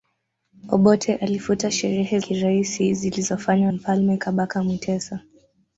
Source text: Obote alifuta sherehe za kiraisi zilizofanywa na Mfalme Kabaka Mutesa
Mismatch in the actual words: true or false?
true